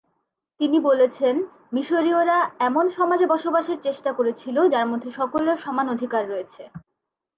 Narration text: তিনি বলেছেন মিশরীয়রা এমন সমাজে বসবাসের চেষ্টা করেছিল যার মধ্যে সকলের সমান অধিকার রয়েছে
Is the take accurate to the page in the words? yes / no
yes